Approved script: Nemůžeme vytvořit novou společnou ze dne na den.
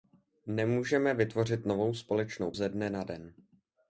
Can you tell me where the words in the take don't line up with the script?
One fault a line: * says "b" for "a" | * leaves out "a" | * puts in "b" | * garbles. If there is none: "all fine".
all fine